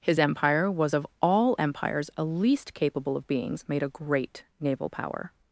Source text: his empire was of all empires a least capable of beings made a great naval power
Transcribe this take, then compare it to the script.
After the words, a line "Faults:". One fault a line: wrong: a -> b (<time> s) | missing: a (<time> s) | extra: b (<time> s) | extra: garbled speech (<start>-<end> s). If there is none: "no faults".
his empire was of all empires a least capable of beings made a great naval power
Faults:
no faults